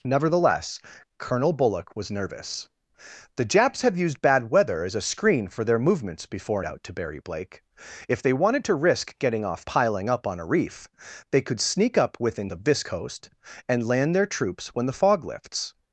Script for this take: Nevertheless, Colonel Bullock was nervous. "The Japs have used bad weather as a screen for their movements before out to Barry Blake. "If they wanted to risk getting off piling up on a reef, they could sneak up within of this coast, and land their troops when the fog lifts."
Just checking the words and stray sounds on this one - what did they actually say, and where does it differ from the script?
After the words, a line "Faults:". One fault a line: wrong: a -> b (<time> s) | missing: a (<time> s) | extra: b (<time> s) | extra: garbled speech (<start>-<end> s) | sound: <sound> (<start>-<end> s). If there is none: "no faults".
Nevertheless, Colonel Bullock was nervous. "The Japs have used bad weather as a screen for their movements before out to Barry Blake. "If they wanted to risk getting off piling up on a reef, they could sneak up within of this coast, and land their troops when the fog lifts."
Faults:
no faults